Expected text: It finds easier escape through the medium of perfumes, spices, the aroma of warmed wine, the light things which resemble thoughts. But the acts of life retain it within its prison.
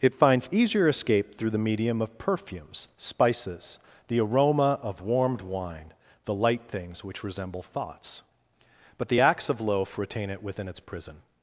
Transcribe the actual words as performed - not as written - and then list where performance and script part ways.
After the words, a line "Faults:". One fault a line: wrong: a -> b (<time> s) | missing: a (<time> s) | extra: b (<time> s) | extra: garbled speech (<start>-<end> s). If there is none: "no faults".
It finds easier escape through the medium of perfumes, spices, the aroma of warmed wine, the light things which resemble thoughts. But the acts of loaf retain it within its prison.
Faults:
wrong: life -> loaf (9.6 s)